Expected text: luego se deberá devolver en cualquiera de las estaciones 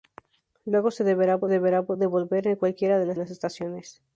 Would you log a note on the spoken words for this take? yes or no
yes